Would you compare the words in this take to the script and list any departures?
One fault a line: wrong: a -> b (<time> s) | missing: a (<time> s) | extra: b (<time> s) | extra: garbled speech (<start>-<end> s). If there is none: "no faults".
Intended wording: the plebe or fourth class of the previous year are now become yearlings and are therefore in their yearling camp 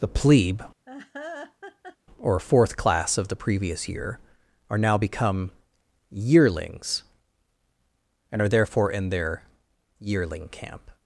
no faults